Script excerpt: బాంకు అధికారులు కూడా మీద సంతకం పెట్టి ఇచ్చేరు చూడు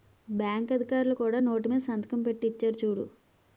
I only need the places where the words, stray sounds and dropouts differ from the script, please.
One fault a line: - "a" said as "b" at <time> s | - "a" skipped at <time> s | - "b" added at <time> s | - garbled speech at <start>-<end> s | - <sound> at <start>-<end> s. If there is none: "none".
- "నోటు" added at 1.4 s